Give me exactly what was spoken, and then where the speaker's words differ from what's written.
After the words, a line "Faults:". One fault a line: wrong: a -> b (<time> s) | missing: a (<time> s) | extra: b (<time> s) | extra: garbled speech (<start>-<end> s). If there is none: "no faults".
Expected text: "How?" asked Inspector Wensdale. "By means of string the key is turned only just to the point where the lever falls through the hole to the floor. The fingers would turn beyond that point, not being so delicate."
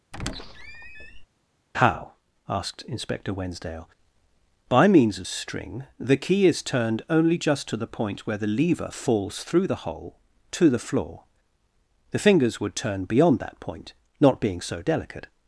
"How?" asked Inspector Wensdale. "By means of string the key is turned only just to the point where the lever falls through the hole to the floor. The fingers would turn beyond that point, not being so delicate."
Faults:
no faults